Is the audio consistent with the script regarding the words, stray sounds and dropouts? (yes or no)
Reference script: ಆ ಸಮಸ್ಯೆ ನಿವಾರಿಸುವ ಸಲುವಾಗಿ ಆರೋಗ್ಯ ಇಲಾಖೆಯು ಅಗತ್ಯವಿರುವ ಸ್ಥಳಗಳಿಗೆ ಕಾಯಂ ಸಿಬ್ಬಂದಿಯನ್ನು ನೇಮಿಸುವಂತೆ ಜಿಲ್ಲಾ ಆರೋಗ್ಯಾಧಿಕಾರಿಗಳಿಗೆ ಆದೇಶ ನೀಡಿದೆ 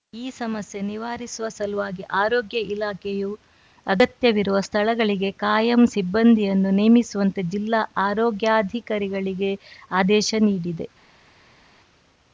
no